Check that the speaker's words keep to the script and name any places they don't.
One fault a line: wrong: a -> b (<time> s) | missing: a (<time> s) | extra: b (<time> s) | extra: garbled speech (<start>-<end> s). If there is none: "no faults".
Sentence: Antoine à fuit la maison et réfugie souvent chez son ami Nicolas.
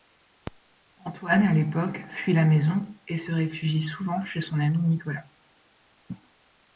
extra: l'époque (1.5 s)
extra: se (3.2 s)